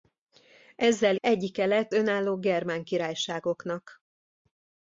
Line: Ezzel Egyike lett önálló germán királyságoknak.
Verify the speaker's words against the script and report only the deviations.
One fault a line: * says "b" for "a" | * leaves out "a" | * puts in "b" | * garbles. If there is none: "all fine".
all fine